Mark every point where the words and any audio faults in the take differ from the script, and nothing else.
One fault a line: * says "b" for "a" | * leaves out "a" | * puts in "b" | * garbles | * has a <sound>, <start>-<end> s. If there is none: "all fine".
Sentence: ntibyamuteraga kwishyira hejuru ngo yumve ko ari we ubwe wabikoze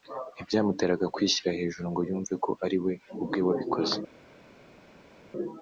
all fine